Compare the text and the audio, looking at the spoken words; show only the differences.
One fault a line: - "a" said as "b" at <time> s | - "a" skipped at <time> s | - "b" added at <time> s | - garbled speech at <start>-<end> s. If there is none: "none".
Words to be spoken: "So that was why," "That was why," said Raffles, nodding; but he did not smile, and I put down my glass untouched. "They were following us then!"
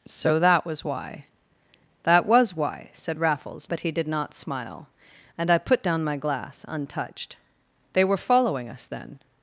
- "nodding" skipped at 3.7 s